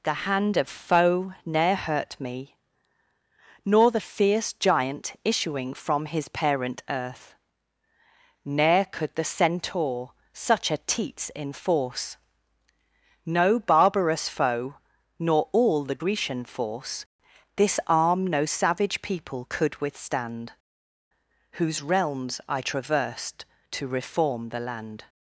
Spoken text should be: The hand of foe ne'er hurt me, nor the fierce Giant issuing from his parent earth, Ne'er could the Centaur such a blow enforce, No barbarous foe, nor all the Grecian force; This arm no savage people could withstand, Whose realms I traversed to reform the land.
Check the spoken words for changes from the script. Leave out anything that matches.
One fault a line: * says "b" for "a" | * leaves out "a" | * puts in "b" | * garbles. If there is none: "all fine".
* says "teats" for "blow"